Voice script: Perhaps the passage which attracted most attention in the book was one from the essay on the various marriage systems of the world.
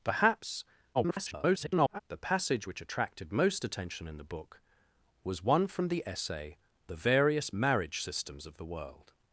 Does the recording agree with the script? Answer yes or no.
no